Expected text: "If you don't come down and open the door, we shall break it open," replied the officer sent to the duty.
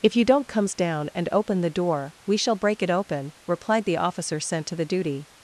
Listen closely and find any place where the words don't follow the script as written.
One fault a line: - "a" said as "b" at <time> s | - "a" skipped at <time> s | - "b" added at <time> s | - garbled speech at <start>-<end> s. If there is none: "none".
- "come" said as "comes" at 0.5 s